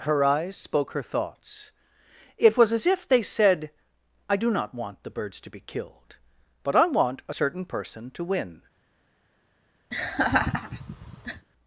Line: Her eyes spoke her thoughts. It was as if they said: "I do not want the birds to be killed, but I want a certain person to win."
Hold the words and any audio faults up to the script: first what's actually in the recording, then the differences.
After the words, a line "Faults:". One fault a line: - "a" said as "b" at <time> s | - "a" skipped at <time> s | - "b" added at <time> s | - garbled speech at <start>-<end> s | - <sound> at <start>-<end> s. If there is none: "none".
Her eyes spoke her thoughts. It was as if they said: "I do not want the birds to be killed, but I want a certain person to win."
Faults:
- laugh at 9.9-11.5 s